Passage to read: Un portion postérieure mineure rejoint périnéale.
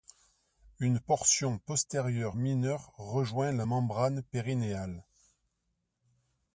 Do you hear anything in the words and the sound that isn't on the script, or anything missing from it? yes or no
yes